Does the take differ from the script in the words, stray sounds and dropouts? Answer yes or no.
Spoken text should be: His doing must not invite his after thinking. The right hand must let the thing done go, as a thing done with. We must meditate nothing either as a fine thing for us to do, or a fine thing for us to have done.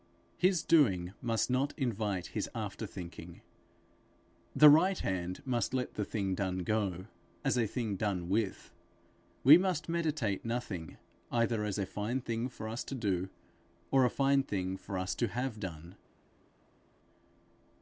no